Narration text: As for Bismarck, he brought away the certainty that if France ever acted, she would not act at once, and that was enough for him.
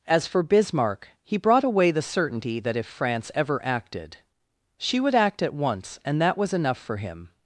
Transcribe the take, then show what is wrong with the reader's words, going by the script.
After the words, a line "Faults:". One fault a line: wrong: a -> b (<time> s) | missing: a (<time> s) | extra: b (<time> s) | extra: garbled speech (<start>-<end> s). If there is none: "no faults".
As for Bismarck, he brought away the certainty that if France ever acted, she would act at once, and that was enough for him.
Faults:
missing: not (5.2 s)